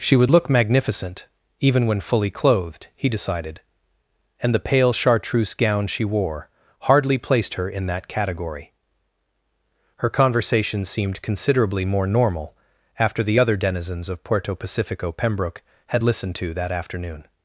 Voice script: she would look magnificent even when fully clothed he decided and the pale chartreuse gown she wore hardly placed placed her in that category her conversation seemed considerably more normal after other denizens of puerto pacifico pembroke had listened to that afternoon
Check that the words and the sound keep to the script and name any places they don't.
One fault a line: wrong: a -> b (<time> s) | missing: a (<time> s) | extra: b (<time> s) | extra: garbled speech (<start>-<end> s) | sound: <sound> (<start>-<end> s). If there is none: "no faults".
missing: placed (7.5 s)
extra: the (13.2 s)